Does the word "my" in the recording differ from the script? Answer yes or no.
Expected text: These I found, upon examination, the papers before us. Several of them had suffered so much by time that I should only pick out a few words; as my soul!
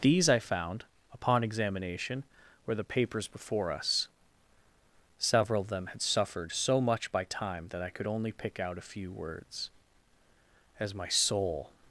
no